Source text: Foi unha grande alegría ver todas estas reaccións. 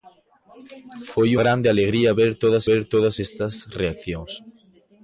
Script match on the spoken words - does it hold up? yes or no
no